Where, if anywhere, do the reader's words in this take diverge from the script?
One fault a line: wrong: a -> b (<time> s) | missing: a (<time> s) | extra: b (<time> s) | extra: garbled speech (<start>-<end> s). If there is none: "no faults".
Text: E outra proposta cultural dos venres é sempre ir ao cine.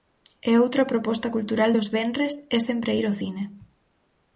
no faults